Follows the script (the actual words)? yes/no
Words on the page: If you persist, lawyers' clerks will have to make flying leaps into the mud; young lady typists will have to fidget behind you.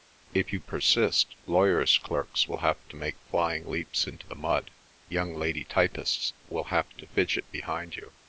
yes